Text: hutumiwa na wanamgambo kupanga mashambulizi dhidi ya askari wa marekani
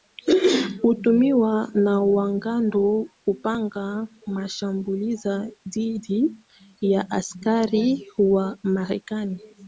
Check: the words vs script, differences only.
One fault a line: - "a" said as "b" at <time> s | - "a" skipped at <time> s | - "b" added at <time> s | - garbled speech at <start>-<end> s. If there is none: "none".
none